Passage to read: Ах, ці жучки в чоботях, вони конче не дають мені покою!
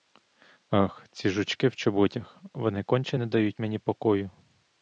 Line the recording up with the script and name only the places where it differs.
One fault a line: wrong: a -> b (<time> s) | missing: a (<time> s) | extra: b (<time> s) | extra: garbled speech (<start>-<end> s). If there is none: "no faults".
no faults